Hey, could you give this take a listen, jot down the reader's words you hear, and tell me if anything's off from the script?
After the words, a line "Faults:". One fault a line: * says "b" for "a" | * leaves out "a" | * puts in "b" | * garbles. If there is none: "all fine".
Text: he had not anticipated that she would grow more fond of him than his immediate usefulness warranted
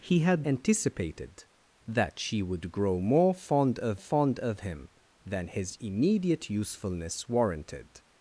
he had anticipated that she would grow more fond of fond of him than his immediate usefulness warranted
Faults:
* leaves out "not"
* puts in "fond of"